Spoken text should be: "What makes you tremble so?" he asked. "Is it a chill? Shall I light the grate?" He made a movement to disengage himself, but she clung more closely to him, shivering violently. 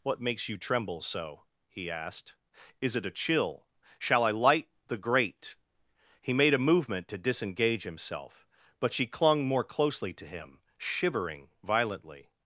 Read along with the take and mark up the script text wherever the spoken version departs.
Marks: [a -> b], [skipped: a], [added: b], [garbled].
"What makes you tremble so?" he asked. "Is it a chill? Shall I light the grate?" He made a movement to disengage himself, but she clung more closely to him, shivering violently.